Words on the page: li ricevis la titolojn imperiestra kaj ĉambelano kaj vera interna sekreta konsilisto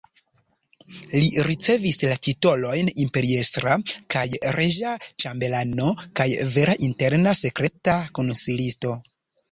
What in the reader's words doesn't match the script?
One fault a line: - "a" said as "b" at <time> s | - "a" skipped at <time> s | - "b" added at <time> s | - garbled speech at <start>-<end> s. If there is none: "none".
- "reĝa" added at 4.6 s